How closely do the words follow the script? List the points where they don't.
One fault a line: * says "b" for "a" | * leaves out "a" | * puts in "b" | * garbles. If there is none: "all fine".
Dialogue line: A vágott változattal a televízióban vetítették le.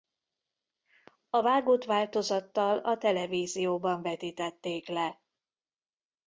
all fine